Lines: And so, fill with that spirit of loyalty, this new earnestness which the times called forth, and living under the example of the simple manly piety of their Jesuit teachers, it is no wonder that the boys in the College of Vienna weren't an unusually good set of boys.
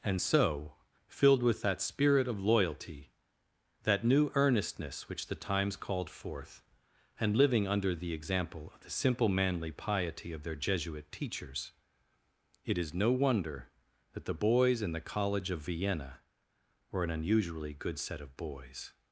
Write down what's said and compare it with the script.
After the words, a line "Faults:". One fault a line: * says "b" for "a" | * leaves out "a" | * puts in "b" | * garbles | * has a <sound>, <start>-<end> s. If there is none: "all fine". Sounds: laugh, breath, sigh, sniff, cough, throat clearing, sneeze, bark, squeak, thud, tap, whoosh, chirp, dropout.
And so, filled with that spirit of loyalty, that new earnestness which the times called forth, and living under the example of the simple manly piety of their Jesuit teachers, it is no wonder that the boys in the College of Vienna were an unusually good set of boys.
Faults:
* says "filled" for "fill"
* says "that" for "this"
* says "were" for "weren't"